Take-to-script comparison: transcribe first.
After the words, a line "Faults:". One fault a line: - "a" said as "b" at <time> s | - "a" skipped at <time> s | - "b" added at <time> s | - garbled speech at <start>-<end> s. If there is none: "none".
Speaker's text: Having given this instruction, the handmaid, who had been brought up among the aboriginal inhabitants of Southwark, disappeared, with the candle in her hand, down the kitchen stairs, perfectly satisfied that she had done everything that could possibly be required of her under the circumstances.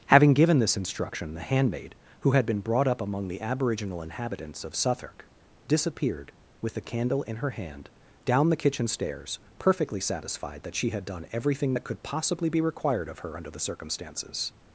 Having given this instruction, the handmaid, who had been brought up among the aboriginal inhabitants of Southwark, disappeared, with the candle in her hand, down the kitchen stairs, perfectly satisfied that she had done everything that could possibly be required of her under the circumstances.
Faults:
none